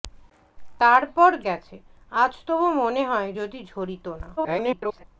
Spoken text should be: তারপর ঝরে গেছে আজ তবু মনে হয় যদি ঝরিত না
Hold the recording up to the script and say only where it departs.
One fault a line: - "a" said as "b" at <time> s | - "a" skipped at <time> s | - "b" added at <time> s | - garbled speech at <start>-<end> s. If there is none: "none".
- "ঝরে" skipped at 1.3 s
- garbled speech at 4.4-5.0 s